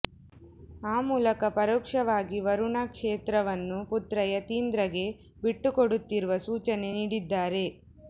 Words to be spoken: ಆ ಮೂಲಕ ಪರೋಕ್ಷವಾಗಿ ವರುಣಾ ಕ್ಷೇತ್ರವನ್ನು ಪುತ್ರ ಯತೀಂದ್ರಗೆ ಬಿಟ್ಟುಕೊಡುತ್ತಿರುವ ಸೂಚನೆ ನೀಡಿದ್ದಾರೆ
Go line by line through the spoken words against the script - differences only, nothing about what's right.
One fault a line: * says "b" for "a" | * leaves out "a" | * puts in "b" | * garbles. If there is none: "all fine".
all fine